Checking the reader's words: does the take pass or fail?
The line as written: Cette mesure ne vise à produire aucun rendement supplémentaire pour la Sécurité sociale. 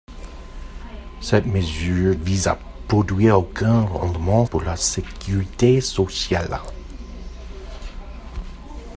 fail